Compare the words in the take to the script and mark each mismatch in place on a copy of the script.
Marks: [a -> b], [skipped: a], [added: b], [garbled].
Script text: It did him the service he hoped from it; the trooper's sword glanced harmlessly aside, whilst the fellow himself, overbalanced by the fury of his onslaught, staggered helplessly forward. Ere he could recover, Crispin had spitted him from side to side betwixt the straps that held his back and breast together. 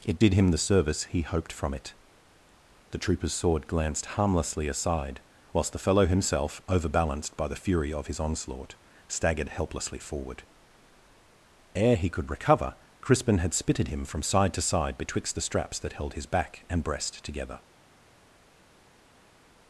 It did him the service he hoped from it; the trooper's sword glanced harmlessly aside, whilst the fellow himself, overbalanced by the fury of his onslaught, staggered helplessly forward. Ere he could recover, Crispin had spitted him from side to side betwixt the straps that held his back and breast together.